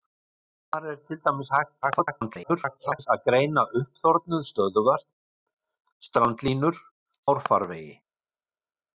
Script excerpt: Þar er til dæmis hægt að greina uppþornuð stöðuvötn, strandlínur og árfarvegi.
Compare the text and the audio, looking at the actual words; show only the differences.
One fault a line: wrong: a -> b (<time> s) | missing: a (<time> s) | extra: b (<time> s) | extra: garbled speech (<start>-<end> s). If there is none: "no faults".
extra: garbled speech (1.8-3.1 s)
missing: og (6.8 s)